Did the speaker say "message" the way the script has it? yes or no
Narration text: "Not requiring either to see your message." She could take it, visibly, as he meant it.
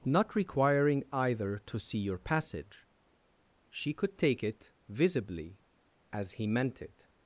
no